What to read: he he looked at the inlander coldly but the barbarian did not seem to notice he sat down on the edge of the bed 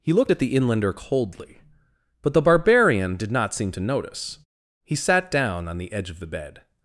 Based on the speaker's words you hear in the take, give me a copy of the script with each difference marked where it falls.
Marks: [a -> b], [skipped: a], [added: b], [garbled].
he [skipped: he] looked at the inlander coldly but the barbarian did not seem to notice he sat down on the edge of the bed